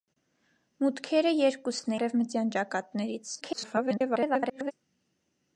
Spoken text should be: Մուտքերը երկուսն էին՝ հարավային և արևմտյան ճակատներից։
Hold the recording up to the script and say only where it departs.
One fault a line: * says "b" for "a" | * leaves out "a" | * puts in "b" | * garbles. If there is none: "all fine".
* leaves out "էին հարավային և"
* garbles